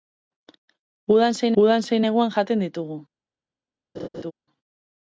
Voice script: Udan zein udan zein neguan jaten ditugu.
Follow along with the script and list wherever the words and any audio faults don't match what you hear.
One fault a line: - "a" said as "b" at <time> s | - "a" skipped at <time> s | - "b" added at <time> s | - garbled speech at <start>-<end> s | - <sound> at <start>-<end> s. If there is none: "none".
- laugh at 3.9-4.3 s